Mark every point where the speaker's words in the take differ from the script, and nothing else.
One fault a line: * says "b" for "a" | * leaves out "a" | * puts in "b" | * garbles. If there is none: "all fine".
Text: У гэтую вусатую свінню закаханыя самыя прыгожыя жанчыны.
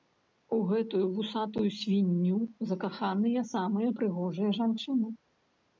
all fine